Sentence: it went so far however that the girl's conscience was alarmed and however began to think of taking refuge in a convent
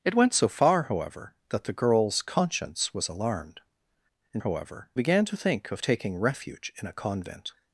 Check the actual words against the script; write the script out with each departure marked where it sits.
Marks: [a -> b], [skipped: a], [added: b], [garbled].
it went so far however that the girl's conscience was alarmed and however began to think of taking refuge in a convent